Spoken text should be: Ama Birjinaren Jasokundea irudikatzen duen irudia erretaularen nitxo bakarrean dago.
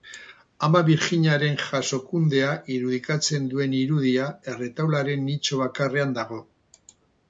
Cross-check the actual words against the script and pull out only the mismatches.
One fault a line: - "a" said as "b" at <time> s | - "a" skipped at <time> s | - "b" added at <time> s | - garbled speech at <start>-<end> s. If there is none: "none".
none